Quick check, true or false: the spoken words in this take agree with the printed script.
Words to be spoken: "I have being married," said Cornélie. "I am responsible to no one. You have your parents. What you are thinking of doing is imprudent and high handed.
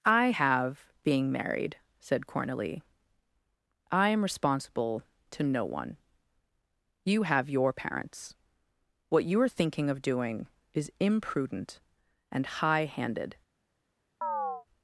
true